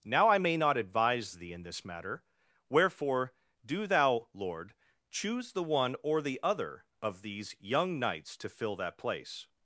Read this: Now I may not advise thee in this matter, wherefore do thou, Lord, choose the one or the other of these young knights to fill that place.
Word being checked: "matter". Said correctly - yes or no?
yes